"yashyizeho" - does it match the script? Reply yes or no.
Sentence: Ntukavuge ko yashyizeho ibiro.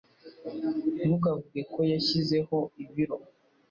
yes